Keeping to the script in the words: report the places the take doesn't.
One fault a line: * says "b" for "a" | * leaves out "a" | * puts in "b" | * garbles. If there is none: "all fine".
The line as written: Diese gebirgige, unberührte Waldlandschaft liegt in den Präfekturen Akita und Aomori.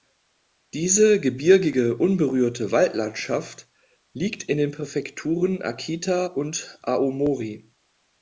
all fine